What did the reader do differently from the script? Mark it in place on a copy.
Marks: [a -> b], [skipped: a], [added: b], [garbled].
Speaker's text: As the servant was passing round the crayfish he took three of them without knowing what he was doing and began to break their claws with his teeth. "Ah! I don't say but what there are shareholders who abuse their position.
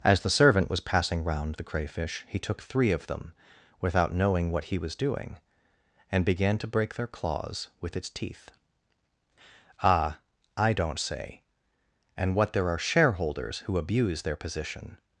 As the servant was passing round the crayfish he took three of them without knowing what he was doing and began to break their claws with [his -> its] teeth. "Ah! I don't say [but -> and] what there are shareholders who abuse their position.